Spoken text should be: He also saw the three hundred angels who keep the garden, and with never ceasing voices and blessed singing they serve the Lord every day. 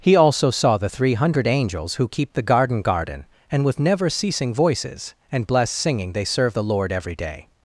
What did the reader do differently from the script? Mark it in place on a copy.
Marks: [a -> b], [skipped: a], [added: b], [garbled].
He also saw the three hundred angels who keep the garden, [added: garden] and with never ceasing voices and blessed singing they serve the Lord every day.